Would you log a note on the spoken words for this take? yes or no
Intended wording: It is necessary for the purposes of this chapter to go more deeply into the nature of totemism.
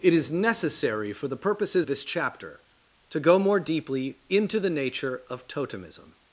yes